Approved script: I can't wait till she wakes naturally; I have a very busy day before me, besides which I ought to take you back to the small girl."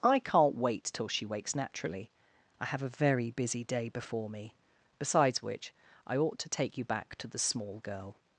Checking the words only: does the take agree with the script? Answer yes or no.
yes